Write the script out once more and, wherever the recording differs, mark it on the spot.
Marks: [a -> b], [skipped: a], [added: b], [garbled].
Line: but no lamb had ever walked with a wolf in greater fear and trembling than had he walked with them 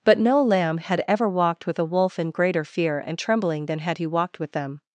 but no lamb had ever walked with a wolf in greater fear and trembling than had he walked with them